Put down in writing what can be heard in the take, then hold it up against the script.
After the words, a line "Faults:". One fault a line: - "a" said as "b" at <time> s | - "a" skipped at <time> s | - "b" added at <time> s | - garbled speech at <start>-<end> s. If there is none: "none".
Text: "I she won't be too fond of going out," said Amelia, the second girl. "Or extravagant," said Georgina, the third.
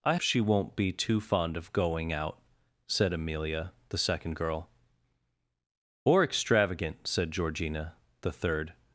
"I she won't be too fond of going out," said Amelia, the second girl. "Or extravagant," said Georgina, the third.
Faults:
none